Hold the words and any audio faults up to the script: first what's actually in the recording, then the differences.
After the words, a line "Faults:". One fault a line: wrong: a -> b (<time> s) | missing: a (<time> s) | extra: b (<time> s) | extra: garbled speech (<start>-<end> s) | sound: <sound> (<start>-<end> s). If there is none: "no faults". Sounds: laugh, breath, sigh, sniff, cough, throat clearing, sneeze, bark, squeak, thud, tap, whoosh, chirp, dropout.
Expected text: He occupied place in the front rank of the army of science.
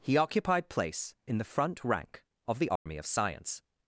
He occupied place in the front rank of the army of science.
Faults:
sound: dropout (2.8-2.9 s)